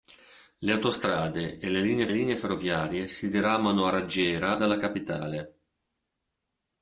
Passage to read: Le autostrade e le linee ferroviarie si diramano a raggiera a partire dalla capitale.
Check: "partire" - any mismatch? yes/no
yes